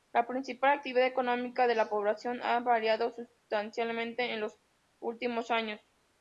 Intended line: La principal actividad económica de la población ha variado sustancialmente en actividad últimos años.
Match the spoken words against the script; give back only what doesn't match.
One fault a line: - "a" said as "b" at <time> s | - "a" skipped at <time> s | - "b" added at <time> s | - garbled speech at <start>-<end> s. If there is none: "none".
- "actividad" said as "los" at 4.4 s